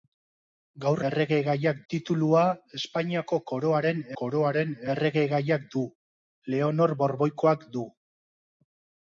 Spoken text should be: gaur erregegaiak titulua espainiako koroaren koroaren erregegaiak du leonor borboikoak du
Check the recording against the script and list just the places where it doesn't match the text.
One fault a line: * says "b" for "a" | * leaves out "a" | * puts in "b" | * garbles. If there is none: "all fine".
all fine